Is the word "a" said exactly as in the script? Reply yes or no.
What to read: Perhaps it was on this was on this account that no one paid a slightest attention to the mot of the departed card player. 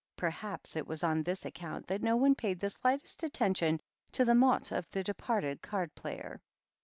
no